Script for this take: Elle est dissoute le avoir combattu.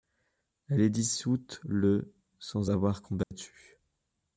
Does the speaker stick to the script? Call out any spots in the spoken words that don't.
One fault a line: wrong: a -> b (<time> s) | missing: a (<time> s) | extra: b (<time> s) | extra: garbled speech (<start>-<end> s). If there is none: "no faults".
extra: sans (2.4 s)